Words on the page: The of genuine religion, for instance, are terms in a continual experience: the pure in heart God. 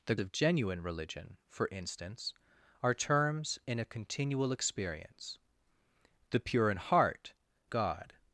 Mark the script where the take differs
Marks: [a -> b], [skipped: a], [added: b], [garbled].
The of genuine religion, for instance, are terms in a continual experience: the pure in heart God.